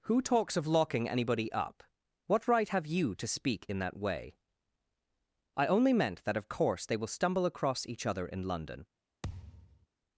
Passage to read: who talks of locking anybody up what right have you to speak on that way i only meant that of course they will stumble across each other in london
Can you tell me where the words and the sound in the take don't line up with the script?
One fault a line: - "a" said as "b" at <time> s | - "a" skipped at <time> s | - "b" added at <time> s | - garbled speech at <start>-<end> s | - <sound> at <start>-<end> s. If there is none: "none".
- "on" said as "in" at 3.7 s
- thud at 9.2-9.9 s